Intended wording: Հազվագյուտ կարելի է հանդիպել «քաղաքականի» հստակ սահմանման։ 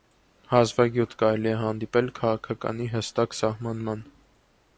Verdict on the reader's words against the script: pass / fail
pass